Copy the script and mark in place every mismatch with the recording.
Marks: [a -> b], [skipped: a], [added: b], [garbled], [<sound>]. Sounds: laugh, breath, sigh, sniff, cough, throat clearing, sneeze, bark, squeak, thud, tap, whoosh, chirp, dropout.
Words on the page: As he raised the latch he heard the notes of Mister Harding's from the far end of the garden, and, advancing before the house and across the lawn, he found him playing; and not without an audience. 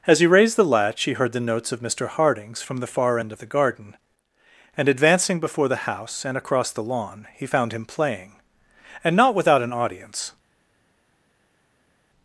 As he raised the latch he heard the notes of Mister Harding's from the far end of the garden, and, advancing before the house and across the lawn, he found him playing; and not without an audience.